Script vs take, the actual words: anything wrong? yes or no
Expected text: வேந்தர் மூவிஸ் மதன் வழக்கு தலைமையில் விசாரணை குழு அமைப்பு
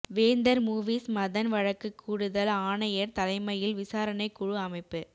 yes